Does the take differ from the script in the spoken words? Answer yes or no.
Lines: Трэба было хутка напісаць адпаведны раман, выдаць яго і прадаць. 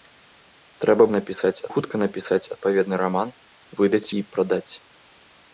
yes